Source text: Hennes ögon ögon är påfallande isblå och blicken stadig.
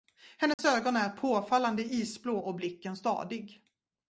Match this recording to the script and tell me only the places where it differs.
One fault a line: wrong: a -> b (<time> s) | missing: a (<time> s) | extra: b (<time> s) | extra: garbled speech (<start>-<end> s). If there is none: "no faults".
missing: ögon (1.0 s)